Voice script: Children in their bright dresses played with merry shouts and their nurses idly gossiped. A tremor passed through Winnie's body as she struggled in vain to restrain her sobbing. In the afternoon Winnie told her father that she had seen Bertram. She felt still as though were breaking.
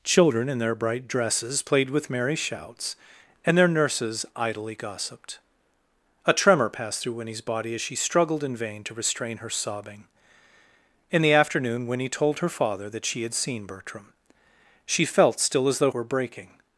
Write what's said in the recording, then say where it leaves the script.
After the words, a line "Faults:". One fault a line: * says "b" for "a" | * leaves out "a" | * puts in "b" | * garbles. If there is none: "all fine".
Children in their bright dresses played with merry shouts and their nurses idly gossiped. A tremor passed through Winnie's body as she struggled in vain to restrain her sobbing. In the afternoon Winnie told her father that she had seen Bertram. She felt still as though were breaking.
Faults:
all fine